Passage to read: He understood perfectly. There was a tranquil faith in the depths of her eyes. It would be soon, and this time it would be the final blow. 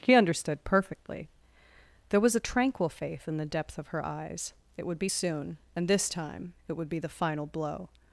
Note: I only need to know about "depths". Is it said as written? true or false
false